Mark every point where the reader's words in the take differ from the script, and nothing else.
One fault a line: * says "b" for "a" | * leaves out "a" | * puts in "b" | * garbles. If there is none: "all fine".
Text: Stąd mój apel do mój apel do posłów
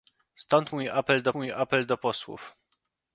all fine